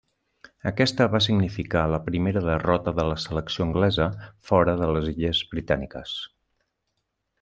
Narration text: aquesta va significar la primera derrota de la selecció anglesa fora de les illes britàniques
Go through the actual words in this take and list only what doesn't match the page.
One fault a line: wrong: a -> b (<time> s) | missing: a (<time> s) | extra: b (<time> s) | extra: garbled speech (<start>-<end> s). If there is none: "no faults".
no faults